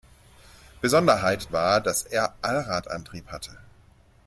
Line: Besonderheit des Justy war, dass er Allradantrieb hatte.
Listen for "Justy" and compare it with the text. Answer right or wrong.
wrong